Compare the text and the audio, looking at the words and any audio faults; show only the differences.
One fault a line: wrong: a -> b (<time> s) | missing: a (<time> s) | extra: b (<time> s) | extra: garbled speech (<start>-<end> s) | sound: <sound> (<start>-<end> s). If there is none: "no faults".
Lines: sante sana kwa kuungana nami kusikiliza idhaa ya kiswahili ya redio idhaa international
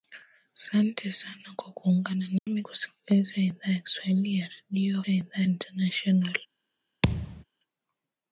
sound: dropout (2.4-2.5 s)
sound: thud (7.0-7.4 s)